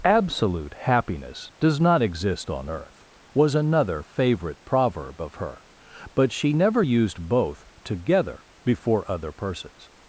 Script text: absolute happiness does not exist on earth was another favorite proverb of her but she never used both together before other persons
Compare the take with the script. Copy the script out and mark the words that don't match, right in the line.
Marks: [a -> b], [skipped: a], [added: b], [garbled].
absolute happiness does not exist on earth was another favorite proverb of her but she never used both together before other persons